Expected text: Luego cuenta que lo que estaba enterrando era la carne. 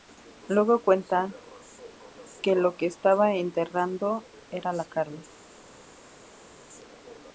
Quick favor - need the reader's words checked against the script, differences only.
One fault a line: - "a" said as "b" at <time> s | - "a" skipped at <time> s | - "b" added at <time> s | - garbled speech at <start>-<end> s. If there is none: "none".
none